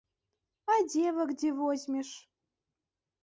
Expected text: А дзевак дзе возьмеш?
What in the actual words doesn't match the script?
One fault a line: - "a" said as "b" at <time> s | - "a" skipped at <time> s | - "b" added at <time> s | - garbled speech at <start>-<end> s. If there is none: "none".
none